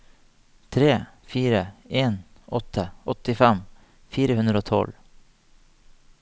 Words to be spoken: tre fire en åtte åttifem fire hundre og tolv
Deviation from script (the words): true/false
false